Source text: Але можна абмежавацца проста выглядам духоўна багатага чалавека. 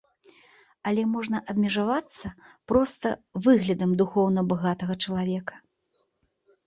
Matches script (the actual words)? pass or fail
pass